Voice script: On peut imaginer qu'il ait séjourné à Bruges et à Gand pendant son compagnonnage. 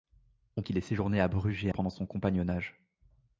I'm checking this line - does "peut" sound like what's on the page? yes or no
no